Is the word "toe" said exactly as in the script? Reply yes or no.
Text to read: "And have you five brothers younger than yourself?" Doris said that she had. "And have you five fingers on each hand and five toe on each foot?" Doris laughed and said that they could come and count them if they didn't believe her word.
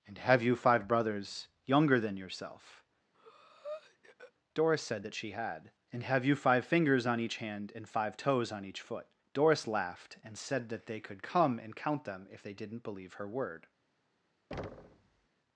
no